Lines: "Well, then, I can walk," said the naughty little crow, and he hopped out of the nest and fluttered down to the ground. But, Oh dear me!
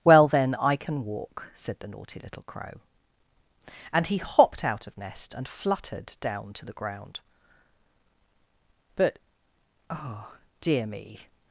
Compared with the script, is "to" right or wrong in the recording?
right